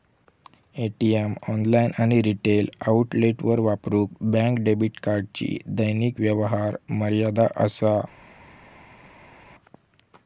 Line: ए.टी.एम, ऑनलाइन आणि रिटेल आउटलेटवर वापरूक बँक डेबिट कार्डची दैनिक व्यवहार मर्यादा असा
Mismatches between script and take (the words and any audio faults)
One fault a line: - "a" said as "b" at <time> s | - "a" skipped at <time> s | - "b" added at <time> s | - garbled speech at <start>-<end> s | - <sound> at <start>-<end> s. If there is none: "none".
none